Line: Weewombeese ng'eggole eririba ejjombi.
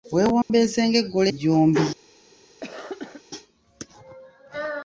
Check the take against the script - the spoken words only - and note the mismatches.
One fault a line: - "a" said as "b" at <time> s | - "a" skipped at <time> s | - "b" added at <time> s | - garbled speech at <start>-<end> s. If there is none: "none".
- "eririba" skipped at 1.3 s